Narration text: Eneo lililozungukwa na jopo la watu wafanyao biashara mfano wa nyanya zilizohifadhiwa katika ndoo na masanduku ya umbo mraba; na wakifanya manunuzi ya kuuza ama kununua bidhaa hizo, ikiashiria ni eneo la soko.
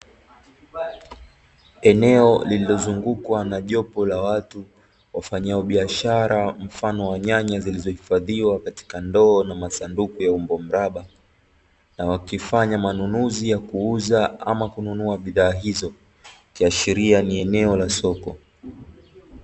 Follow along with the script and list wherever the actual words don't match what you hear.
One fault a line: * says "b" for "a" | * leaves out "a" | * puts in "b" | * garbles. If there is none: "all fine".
all fine